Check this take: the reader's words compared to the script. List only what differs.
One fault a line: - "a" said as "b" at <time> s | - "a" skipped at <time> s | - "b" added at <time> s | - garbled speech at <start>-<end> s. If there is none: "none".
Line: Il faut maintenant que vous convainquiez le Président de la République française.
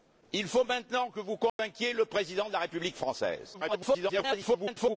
- garbled speech at 3.5-5.0 s